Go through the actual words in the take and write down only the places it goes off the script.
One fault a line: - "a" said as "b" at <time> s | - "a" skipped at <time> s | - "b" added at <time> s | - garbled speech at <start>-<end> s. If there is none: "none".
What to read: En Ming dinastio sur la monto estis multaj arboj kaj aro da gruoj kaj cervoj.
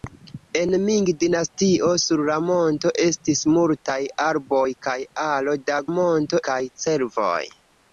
- "gruoj" said as "monto" at 5.9 s